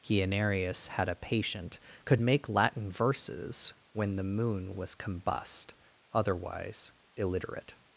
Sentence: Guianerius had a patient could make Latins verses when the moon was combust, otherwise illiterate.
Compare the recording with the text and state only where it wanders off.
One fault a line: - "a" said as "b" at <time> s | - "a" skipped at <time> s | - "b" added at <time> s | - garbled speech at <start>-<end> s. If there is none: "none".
- "Latins" said as "Latin" at 2.5 s